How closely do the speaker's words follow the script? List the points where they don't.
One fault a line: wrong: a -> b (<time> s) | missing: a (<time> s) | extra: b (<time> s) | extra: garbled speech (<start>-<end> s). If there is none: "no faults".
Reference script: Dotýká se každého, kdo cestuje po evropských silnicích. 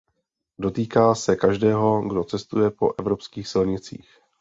no faults